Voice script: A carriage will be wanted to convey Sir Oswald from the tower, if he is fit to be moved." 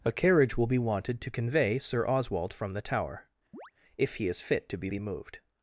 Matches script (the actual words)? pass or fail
fail